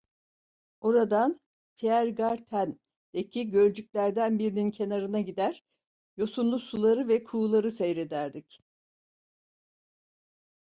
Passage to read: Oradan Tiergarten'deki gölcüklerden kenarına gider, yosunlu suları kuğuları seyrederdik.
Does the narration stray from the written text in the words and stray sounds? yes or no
yes